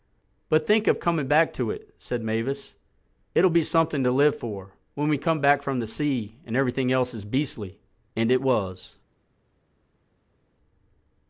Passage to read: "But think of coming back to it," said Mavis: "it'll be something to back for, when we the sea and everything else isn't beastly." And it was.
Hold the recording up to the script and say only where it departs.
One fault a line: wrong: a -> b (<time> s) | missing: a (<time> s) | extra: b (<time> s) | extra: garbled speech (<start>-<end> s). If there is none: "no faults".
wrong: back -> live (4.1 s)
extra: come back from (5.2 s)
wrong: isn't -> is (7.1 s)